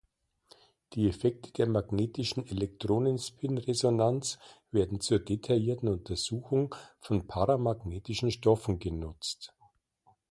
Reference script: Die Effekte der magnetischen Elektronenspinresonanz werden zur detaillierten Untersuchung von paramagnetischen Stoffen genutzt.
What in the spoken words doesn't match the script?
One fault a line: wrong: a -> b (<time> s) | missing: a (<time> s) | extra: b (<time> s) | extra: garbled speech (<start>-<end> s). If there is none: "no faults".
no faults